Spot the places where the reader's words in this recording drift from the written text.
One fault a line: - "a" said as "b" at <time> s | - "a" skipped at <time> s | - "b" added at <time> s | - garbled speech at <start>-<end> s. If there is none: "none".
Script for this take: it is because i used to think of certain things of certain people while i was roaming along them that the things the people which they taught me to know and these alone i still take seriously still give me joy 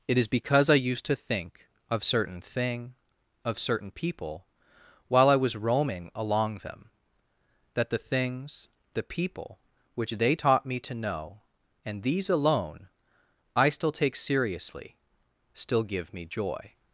- "things" said as "thing" at 2.4 s